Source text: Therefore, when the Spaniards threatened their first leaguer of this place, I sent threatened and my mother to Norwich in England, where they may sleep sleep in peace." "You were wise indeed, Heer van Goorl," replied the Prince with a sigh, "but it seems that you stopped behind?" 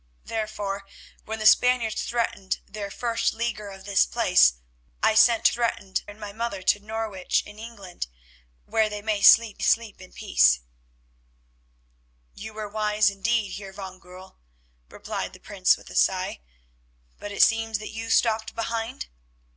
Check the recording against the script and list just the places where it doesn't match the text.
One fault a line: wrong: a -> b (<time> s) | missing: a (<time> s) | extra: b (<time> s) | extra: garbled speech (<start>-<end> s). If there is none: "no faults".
no faults